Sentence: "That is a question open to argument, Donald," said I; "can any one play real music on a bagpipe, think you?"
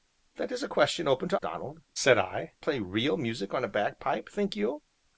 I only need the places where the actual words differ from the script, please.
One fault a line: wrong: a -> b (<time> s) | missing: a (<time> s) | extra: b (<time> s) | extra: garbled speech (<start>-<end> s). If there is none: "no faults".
missing: argument (1.4 s)
missing: can any one (2.5 s)